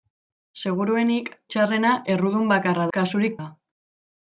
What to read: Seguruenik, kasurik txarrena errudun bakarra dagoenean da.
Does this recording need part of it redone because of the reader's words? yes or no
yes